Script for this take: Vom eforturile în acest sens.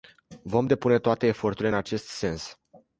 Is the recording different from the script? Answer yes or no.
yes